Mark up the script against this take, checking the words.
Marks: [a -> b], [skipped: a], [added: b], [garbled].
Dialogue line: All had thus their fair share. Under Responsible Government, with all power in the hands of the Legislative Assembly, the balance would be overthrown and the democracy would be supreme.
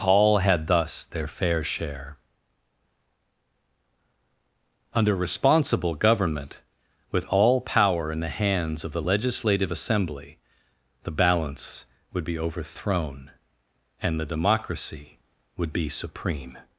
All had thus their fair share. Under Responsible Government, with all power in the hands of the Legislative Assembly, the balance would be overthrown and the democracy would be supreme.